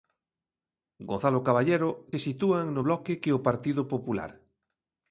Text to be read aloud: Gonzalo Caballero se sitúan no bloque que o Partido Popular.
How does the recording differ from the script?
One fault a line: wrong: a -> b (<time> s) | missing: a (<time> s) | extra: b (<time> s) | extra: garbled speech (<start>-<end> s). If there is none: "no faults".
no faults